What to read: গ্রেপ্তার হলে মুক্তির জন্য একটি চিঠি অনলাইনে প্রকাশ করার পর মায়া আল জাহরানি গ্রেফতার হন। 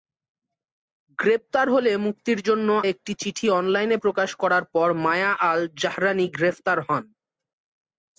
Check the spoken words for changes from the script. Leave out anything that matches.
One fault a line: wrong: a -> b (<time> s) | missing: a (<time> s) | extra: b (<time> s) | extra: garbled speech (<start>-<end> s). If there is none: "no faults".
no faults